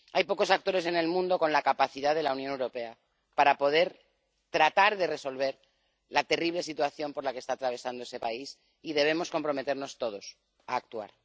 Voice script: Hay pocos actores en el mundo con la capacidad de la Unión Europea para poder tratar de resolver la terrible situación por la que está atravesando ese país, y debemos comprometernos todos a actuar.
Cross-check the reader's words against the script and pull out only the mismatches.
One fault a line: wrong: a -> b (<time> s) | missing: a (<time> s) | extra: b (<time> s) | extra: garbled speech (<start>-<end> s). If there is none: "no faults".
no faults